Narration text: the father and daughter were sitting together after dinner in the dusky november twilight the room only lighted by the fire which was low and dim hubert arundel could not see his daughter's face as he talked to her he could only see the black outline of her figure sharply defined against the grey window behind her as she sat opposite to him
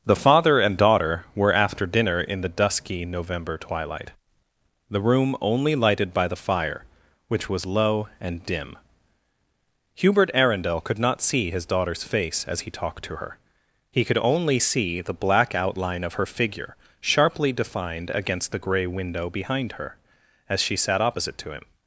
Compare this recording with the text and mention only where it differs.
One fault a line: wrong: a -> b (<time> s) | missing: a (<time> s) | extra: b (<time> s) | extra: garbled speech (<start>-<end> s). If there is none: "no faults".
missing: sitting together (1.5 s)